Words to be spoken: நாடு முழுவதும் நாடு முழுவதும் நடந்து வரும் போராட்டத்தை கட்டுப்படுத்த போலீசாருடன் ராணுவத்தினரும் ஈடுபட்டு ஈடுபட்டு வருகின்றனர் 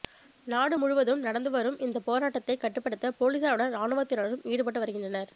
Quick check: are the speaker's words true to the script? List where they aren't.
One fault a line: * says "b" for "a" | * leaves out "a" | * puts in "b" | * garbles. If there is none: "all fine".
* leaves out "நாடு முழுவதும்"
* puts in "இந்த"
* leaves out "ஈடுபட்டு"